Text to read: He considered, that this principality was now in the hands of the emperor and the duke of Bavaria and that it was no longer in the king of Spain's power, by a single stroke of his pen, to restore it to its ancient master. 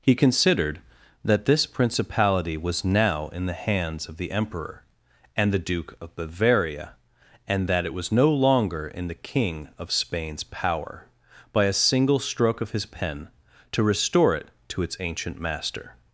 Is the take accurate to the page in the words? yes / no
yes